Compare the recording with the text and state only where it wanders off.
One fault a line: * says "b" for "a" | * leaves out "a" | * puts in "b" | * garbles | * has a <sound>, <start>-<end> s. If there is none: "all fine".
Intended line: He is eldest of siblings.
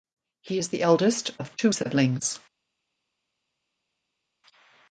* puts in "the"
* puts in "two"